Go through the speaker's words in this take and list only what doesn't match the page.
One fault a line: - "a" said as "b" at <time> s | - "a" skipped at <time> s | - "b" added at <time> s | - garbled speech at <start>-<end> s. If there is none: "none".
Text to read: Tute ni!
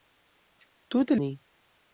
none